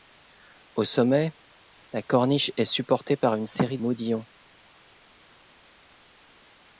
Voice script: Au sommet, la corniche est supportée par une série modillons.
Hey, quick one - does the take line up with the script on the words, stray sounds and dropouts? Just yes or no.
yes